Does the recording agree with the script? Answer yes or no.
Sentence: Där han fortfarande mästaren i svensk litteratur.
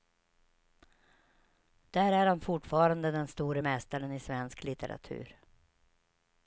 no